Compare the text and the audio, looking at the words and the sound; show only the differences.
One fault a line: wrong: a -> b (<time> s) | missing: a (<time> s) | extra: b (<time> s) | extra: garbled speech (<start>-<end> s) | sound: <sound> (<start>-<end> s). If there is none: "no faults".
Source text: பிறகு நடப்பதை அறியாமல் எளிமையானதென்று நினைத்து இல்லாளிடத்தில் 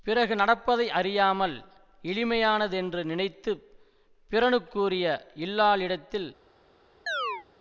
extra: பிறனுக்குரிய (4.3 s)
sound: chirp (7.1-7.5 s)